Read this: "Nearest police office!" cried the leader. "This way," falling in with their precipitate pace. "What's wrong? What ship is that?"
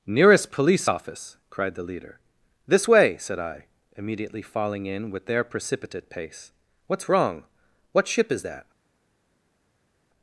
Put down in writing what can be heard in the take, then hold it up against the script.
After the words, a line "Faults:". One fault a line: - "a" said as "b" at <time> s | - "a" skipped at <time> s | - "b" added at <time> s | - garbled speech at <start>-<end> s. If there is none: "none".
"Nearest police office!" cried the leader. "This way," said I, immediately falling in with their precipitate pace. "What's wrong? What ship is that?"
Faults:
- "said I immediately" added at 3.2 s